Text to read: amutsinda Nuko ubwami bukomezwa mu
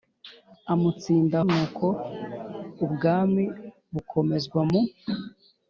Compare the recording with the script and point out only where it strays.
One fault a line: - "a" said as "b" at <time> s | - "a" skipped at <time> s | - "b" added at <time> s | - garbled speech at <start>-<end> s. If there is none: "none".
none